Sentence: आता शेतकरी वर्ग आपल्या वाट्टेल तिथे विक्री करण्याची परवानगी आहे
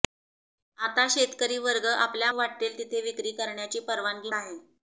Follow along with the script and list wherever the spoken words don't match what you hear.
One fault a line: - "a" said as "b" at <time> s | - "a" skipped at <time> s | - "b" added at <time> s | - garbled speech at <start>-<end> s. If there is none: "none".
none